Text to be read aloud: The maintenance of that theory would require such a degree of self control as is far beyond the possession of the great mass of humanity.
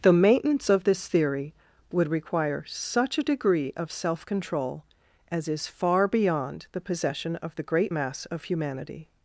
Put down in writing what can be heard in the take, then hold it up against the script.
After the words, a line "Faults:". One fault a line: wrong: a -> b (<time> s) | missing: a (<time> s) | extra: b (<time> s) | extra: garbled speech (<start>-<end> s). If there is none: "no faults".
The maintenance of this theory would require such a degree of self control as is far beyond the possession of the great mass of humanity.
Faults:
wrong: that -> this (0.8 s)